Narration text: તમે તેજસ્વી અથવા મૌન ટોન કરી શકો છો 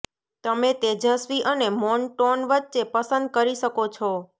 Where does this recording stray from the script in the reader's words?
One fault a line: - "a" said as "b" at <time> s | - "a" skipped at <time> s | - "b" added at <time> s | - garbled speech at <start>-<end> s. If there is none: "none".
- "અથવા" said as "અને" at 1.4 s
- "વચ્ચે પસંદ" added at 2.5 s